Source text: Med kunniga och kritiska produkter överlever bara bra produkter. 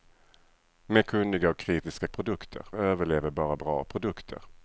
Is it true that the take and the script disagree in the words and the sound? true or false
false